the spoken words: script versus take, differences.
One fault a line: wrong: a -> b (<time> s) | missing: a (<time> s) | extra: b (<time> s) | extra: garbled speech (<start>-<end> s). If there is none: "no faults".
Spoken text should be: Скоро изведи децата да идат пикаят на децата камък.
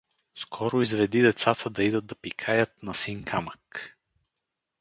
extra: да (2.1 s)
wrong: децата -> син (2.9 s)